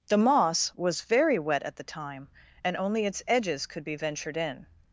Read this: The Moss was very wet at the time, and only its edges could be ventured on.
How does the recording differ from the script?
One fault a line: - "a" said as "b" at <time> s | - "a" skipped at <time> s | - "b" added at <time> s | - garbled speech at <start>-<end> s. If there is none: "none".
- "on" said as "in" at 4.4 s